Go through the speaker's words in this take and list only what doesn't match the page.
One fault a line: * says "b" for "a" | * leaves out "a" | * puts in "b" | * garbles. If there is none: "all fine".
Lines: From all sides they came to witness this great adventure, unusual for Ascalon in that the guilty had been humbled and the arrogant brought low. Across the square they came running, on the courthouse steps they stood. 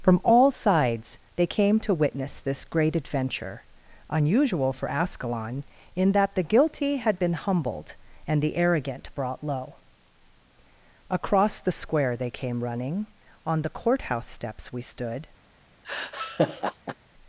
* says "we" for "they"